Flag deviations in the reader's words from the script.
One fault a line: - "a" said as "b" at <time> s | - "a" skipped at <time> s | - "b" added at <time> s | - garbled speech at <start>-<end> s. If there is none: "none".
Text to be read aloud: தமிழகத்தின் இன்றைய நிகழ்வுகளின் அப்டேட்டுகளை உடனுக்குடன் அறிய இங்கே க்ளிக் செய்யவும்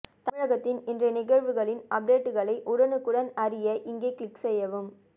none